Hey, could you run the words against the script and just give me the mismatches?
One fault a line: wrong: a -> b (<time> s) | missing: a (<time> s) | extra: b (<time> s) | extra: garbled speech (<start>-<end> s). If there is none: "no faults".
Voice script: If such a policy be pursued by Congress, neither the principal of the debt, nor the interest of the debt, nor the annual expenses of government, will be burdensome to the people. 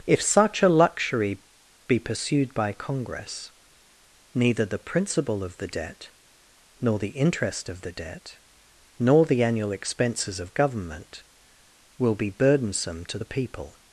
wrong: policy -> luxury (0.7 s)